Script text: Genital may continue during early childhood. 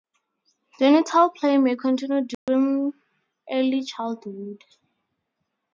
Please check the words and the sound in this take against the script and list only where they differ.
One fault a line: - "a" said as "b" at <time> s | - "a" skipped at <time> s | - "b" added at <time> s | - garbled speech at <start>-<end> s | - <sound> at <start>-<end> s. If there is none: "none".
- "play" added at 1.3 s
- dropout at 2.3-2.5 s